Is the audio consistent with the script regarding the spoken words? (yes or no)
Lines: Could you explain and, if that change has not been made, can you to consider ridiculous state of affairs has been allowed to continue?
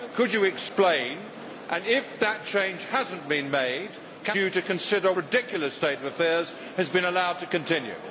yes